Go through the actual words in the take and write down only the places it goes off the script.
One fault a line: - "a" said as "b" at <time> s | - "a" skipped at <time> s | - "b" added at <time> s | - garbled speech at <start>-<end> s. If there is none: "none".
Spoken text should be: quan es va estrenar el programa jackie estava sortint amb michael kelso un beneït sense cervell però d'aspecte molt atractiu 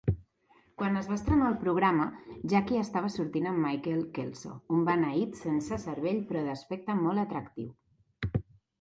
none